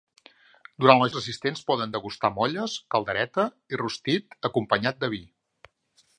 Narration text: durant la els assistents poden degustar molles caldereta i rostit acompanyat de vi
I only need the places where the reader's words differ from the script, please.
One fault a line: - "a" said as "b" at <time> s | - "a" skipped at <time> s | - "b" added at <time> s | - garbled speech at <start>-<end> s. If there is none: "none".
none